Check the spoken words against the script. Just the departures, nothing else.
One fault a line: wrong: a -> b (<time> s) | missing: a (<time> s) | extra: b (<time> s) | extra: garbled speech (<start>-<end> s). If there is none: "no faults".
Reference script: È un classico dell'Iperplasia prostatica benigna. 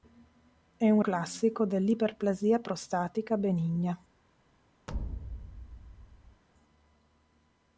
no faults